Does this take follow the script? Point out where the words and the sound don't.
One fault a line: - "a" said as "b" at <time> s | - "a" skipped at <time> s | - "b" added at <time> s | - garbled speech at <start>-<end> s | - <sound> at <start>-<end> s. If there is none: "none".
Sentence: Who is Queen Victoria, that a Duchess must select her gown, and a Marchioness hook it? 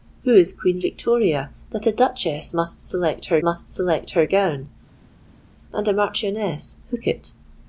- "must select her" added at 3.4 s